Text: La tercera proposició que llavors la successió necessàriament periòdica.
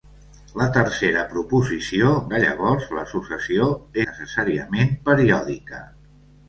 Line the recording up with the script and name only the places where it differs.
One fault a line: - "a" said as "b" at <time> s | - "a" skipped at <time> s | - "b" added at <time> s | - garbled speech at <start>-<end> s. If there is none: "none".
none